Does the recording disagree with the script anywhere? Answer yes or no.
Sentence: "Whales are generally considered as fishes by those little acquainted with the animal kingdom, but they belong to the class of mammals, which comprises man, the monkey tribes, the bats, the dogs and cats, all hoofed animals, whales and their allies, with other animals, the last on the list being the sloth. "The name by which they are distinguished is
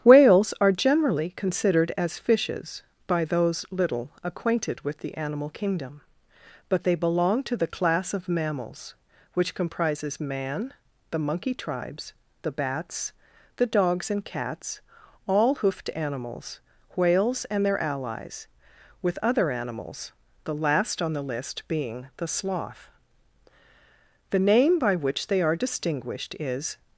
no